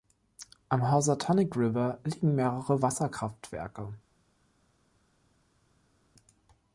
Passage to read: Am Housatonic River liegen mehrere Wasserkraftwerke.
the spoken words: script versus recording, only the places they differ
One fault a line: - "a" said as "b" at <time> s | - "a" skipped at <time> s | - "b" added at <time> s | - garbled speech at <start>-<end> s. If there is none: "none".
none